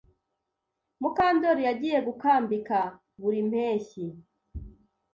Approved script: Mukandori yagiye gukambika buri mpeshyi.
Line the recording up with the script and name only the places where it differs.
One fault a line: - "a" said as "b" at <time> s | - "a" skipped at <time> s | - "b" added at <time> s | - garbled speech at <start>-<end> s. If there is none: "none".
none